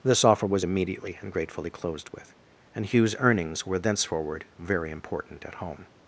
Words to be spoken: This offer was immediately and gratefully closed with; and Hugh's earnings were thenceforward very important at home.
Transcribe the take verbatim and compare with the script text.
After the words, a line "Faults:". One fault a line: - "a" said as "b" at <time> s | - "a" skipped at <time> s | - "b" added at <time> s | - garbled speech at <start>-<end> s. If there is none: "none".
This offer was immediately and gratefully closed with; and Hugh's earnings were thenceforward very important at home.
Faults:
none